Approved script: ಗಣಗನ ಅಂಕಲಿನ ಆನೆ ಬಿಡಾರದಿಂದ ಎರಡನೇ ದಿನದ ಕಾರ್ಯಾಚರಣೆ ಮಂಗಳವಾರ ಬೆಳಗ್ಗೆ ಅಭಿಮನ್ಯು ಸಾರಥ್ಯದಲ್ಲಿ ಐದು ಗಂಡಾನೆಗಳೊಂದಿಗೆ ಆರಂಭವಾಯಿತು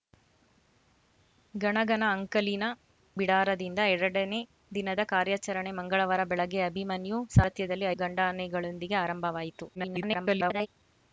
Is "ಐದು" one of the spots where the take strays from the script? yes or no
yes